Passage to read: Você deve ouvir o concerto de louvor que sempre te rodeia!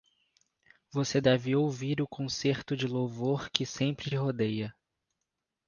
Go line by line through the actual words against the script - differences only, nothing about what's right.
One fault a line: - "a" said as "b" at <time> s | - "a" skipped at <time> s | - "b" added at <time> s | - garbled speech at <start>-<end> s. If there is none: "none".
- "te" skipped at 4.1 s